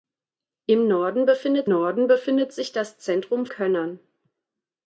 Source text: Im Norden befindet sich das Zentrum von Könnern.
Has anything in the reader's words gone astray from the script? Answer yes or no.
yes